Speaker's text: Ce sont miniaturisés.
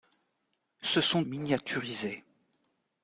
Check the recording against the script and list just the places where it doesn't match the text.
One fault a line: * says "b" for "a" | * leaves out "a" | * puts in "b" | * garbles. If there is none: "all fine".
all fine